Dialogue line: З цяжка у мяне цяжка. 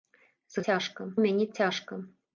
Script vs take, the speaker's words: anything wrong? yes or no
no